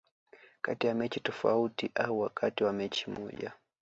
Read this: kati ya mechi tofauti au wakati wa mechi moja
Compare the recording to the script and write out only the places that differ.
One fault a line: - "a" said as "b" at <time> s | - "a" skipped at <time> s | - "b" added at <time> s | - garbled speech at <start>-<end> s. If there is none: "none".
none